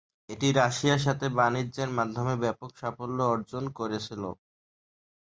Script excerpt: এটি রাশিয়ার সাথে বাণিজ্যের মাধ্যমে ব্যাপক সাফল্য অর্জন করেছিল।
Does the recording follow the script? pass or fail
pass